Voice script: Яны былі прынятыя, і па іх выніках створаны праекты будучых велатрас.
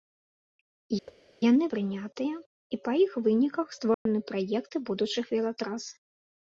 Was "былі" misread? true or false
true